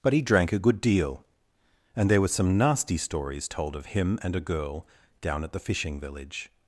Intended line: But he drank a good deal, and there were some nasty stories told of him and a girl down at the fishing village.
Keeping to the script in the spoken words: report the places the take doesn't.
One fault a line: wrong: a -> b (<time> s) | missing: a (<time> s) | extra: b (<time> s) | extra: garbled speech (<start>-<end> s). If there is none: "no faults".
no faults